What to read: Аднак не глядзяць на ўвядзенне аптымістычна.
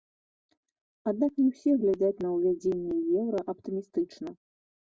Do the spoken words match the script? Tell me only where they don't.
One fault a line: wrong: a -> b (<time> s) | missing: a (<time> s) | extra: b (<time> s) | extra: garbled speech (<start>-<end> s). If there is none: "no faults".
extra: ўсе (1.5 s)
extra: еўра (3.2 s)